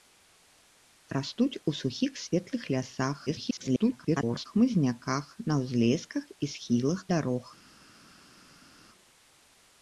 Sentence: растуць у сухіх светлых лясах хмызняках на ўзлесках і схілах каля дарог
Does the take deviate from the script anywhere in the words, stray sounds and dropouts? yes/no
yes